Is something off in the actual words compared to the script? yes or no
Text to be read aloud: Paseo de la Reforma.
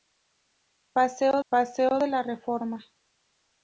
yes